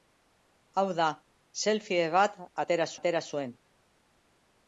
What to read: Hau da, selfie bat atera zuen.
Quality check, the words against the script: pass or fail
fail